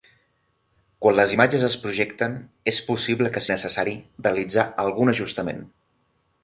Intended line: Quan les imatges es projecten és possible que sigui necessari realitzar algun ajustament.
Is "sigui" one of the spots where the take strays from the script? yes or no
yes